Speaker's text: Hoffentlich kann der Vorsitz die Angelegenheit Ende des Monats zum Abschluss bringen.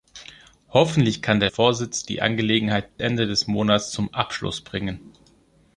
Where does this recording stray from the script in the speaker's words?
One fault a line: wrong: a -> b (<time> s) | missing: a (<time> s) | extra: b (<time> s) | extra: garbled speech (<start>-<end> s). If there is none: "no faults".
no faults